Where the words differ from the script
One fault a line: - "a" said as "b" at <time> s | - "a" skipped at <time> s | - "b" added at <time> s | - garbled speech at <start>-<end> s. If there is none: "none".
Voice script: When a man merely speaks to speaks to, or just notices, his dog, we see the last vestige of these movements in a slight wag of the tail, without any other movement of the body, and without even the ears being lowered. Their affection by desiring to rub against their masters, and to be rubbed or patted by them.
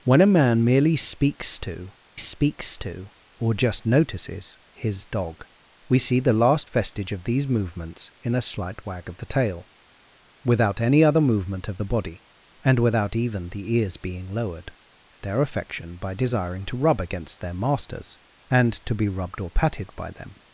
none